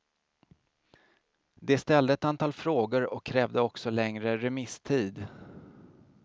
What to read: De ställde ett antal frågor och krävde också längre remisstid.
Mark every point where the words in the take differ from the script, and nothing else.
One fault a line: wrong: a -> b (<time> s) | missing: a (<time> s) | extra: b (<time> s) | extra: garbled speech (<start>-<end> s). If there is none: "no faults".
no faults